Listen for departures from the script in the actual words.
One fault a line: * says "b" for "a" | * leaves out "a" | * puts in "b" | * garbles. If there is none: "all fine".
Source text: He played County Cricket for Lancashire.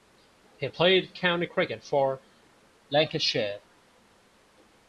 all fine